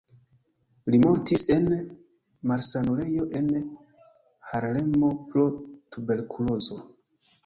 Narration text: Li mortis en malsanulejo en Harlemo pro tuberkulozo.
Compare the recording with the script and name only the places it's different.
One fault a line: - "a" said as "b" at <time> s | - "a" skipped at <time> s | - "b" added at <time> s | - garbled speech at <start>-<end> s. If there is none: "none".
none